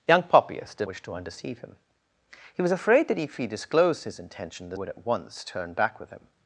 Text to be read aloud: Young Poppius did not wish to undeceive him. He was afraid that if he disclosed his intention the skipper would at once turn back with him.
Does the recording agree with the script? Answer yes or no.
no